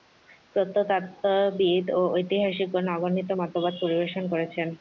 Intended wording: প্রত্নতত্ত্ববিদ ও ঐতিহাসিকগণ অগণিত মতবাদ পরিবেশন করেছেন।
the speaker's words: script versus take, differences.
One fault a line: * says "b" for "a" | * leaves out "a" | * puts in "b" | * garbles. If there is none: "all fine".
all fine